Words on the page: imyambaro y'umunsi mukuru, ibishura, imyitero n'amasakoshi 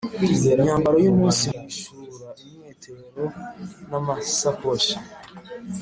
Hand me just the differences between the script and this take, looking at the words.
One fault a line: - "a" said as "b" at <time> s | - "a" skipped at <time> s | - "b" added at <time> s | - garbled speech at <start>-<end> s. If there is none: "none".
- "mukuru" skipped at 1.4 s